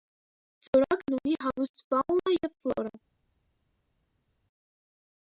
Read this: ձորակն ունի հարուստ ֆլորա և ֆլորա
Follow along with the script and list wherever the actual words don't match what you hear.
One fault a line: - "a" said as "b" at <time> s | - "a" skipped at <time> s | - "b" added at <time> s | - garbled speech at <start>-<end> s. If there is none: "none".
- "ֆլորա" said as "ֆաունա" at 1.9 s